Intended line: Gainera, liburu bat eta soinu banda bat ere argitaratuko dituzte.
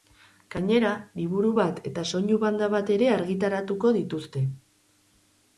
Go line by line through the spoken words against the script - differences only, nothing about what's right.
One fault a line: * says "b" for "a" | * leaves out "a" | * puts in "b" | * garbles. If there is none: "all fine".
all fine